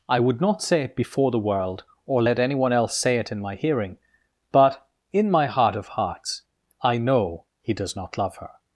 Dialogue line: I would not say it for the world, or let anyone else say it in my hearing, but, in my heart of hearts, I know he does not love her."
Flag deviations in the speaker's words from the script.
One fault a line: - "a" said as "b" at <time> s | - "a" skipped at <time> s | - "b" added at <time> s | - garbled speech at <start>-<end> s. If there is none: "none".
- "for" said as "before" at 0.9 s